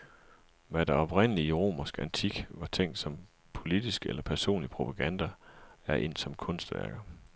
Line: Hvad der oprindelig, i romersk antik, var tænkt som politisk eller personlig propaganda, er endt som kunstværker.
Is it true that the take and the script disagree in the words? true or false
false